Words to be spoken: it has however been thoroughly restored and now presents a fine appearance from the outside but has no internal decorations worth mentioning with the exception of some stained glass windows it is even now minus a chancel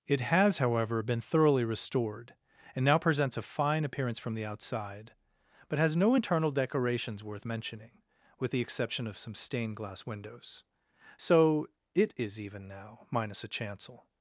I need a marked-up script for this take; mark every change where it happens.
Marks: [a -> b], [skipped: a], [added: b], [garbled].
it has however been thoroughly restored and now presents a fine appearance from the outside but has no internal decorations worth mentioning with the exception of some stained glass windows [added: so] it is even now minus a chancel